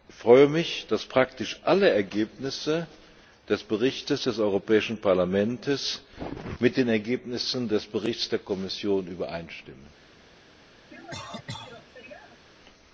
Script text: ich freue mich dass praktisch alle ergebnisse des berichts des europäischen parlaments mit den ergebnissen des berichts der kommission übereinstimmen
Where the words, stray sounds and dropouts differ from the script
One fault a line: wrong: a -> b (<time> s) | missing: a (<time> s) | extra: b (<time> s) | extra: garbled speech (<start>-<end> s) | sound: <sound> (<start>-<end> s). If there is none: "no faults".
sound: cough (10.9-12.5 s)